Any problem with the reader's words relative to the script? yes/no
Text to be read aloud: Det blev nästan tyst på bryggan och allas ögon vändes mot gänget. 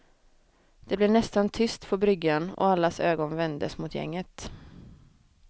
no